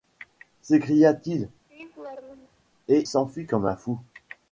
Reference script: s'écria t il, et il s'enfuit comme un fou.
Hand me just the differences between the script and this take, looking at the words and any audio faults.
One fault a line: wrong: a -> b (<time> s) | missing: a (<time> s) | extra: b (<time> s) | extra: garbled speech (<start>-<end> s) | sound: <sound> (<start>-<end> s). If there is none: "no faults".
sound: laugh (1.7-2.6 s)
missing: il (3.0 s)